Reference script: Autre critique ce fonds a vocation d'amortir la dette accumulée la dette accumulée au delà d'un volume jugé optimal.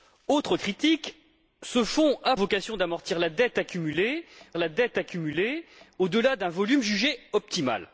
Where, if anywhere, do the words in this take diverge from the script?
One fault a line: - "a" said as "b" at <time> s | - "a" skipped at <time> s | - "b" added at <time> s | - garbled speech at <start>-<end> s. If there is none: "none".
none